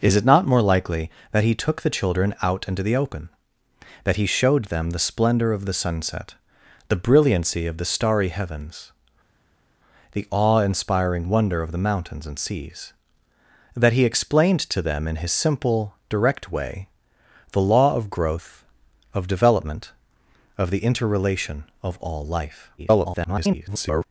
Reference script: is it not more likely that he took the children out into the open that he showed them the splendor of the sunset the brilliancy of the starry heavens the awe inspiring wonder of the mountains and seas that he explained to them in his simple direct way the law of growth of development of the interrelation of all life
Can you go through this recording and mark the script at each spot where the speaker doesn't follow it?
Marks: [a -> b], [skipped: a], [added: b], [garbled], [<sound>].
is it not more likely that he took the children out into the open that he showed them the splendor of the sunset the brilliancy of the starry heavens the awe inspiring wonder of the mountains and seas that he explained to them in his simple direct way the law of growth of development of the interrelation of all life [garbled]